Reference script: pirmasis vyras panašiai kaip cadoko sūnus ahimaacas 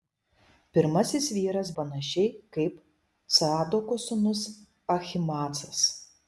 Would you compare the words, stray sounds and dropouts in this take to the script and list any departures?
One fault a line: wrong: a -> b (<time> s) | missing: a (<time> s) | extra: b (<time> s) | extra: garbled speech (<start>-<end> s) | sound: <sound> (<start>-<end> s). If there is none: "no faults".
no faults